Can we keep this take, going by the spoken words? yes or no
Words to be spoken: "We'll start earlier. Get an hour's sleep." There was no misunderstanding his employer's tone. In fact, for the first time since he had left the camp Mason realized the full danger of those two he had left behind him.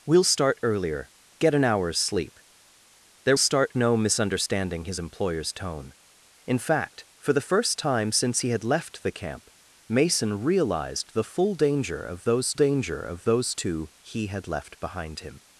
no